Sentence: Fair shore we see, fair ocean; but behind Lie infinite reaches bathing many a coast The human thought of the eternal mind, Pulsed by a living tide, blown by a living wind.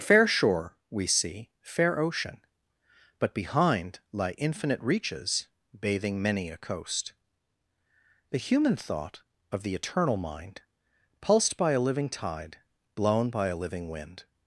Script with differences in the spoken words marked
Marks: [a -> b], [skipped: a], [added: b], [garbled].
Fair shore we see, fair ocean; but behind Lie infinite reaches bathing many a coast The human thought of the eternal mind, Pulsed by a living tide, blown by a living wind.